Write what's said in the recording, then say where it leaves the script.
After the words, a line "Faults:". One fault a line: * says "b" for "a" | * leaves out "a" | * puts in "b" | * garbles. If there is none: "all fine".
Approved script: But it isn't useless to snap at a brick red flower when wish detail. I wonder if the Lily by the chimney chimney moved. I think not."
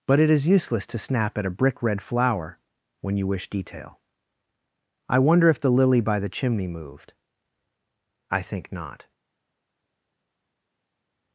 But it is useless to snap at a brick red flower when you wish detail. I wonder if the Lily by the chimney moved. I think not."
Faults:
* says "is" for "isn't"
* puts in "you"
* leaves out "chimney"